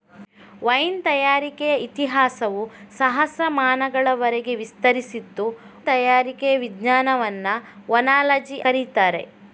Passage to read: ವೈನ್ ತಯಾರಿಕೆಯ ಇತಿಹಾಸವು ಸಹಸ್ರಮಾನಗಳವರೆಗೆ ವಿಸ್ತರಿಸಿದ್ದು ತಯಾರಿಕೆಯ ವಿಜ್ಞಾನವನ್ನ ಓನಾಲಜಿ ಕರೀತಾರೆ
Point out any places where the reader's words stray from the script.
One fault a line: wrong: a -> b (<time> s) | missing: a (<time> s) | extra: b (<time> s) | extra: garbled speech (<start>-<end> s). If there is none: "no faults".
no faults